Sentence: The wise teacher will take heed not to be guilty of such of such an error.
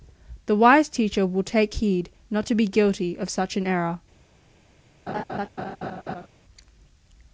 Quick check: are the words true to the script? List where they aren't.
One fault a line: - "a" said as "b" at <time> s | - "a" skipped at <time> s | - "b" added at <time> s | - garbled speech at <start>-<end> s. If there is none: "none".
- "of such" skipped at 3.6 s